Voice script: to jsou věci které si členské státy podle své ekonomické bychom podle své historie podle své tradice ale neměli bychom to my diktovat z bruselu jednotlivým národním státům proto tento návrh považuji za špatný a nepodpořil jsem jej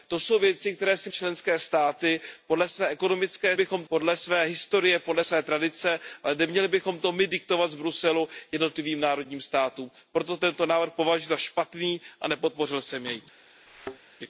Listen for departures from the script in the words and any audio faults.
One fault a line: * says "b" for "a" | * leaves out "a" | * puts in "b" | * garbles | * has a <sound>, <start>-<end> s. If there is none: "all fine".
* has a thud, 13.7-14.0 s